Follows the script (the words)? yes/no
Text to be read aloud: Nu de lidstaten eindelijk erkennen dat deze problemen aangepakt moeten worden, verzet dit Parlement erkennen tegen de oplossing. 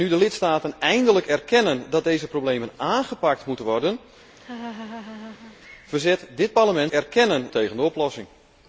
yes